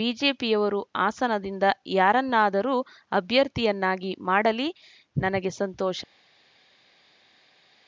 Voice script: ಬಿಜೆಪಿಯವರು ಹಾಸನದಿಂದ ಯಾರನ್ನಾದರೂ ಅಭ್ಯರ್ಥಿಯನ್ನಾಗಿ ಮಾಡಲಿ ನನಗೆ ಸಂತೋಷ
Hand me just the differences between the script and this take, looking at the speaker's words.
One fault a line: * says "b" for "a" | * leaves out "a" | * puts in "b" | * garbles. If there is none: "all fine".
all fine